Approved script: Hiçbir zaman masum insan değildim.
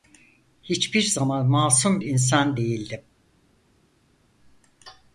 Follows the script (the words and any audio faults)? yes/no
yes